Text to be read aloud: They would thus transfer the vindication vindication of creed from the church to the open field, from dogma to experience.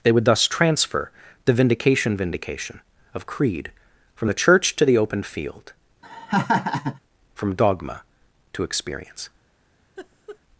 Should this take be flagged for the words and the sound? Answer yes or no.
yes